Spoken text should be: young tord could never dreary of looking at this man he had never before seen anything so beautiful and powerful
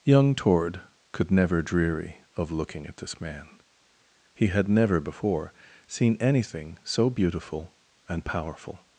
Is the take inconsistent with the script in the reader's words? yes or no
no